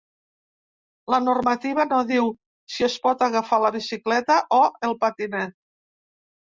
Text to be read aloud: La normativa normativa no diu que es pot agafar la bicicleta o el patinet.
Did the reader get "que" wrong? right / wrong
wrong